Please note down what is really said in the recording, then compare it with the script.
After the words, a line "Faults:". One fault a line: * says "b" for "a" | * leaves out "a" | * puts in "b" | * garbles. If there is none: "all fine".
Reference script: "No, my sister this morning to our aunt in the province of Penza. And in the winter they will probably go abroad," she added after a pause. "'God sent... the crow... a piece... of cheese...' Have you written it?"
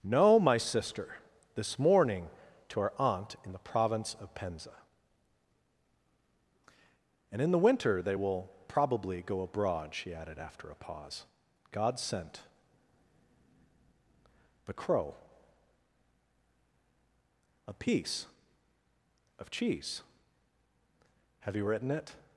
"No, my sister this morning to our aunt in the province of Penza. And in the winter they will probably go abroad," she added after a pause. "'God sent... the crow... a piece... of cheese...' Have you written it?"
Faults:
all fine